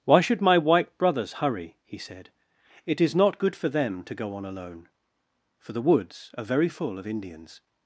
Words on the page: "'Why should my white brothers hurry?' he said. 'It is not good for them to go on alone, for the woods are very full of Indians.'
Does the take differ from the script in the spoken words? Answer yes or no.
no